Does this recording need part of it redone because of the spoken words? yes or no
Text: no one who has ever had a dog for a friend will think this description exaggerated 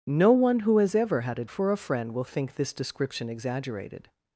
yes